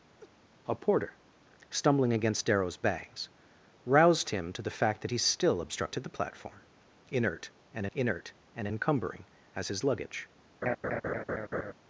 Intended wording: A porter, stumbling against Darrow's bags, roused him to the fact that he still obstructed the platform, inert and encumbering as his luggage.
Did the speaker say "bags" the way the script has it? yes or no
yes